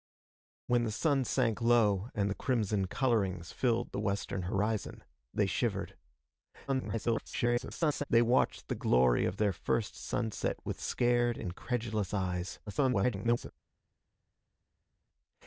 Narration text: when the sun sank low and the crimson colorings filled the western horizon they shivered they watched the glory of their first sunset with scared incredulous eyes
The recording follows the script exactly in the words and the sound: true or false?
false